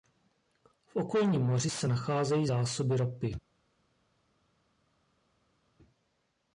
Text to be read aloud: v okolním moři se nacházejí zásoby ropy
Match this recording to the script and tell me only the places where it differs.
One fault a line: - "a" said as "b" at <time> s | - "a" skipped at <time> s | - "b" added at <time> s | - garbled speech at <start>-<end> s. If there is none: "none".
none